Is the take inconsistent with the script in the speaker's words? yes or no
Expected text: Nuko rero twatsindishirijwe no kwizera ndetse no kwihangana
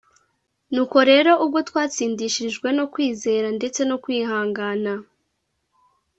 yes